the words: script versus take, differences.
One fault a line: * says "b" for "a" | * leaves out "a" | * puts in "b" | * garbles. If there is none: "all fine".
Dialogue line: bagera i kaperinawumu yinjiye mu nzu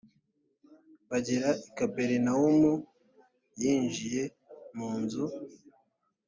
all fine